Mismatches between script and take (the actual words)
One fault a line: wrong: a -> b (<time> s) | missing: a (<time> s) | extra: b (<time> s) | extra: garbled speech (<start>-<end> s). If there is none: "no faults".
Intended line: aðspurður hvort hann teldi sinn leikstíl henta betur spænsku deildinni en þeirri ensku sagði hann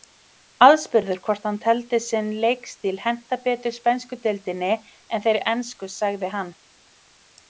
no faults